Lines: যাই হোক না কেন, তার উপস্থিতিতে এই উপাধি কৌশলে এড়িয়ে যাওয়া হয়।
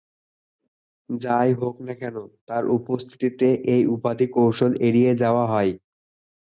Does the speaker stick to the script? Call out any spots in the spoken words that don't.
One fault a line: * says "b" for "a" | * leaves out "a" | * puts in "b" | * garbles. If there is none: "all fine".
all fine